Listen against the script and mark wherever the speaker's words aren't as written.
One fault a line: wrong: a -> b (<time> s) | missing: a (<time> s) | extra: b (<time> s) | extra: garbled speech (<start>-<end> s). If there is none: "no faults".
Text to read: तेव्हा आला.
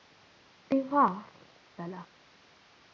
no faults